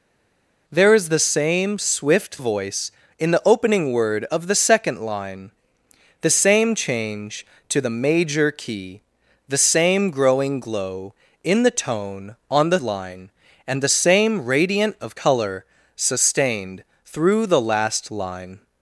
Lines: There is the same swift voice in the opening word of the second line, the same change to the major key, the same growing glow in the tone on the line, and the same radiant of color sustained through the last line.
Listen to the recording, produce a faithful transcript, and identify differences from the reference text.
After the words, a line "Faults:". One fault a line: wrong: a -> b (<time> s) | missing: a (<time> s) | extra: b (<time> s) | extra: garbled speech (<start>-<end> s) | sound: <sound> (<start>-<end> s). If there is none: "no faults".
There is the same swift voice in the opening word of the second line, the same change to the major key, the same growing glow in the tone on the line, and the same radiant of color sustained through the last line.
Faults:
no faults